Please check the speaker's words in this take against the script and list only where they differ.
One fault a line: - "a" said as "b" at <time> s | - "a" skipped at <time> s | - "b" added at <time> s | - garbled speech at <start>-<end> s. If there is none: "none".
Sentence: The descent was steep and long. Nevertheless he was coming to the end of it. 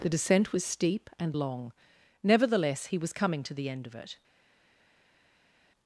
none